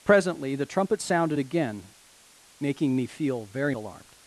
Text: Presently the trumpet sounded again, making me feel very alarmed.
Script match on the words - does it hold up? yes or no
yes